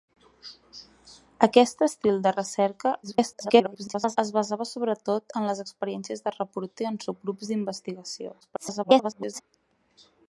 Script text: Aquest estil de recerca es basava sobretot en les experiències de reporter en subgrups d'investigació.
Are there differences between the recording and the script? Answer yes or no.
yes